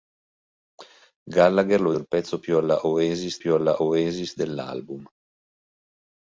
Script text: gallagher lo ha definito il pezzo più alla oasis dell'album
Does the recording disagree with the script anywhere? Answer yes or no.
yes